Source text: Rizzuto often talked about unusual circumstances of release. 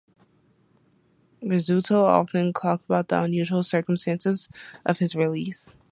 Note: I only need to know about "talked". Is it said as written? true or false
true